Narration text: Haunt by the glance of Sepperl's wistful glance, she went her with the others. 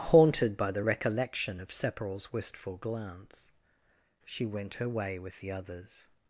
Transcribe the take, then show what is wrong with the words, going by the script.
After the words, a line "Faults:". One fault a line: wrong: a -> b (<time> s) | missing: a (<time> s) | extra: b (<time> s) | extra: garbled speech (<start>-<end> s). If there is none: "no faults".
Haunted by the recollection of Sepperl's wistful glance, she went her way with the others.
Faults:
wrong: Haunt -> Haunted (0.1 s)
wrong: glance -> recollection (0.8 s)
extra: way (4.9 s)